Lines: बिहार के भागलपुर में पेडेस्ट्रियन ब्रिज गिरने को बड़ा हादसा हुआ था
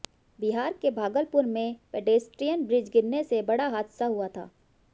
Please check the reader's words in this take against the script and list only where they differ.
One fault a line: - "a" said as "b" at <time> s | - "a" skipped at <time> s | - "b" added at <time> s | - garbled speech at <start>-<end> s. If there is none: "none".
- "को" said as "से" at 3.2 s